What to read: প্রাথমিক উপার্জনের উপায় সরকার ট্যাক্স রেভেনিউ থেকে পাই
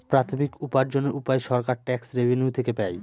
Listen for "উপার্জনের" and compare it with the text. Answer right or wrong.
right